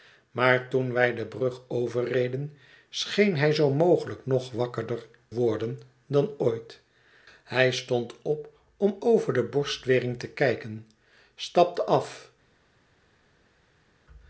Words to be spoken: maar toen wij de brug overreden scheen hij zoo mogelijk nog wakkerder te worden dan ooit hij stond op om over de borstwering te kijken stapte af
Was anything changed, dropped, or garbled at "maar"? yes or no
no